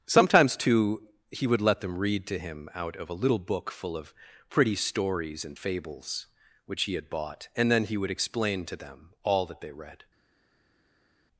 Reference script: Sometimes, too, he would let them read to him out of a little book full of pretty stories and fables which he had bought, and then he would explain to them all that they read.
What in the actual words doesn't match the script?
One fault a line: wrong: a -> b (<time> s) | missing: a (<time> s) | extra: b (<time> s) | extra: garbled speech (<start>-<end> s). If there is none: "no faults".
no faults